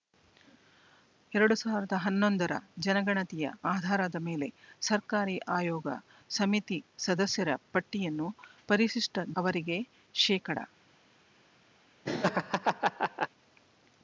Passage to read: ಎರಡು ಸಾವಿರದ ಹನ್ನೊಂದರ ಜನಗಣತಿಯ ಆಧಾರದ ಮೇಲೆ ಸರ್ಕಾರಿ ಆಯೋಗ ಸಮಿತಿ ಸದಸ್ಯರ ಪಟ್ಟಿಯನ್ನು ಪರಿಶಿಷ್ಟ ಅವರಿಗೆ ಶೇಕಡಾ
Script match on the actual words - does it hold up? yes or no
yes